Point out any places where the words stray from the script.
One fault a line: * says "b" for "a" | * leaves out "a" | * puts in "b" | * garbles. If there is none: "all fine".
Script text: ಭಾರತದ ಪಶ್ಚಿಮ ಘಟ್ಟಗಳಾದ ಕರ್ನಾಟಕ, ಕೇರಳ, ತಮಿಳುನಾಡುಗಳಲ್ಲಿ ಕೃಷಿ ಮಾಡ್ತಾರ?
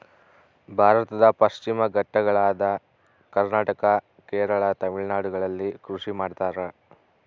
all fine